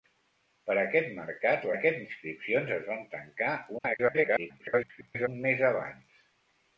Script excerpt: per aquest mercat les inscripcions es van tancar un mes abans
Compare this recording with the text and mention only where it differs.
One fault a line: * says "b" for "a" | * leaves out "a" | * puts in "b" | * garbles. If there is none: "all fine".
* says "aquest" for "les"
* garbles